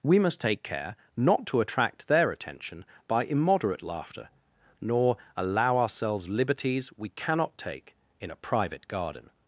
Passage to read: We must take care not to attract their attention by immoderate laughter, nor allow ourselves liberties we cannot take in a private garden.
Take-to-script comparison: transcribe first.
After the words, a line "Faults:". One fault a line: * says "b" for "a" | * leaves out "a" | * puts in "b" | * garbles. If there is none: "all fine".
We must take care not to attract their attention by immoderate laughter, nor allow ourselves liberties we cannot take in a private garden.
Faults:
all fine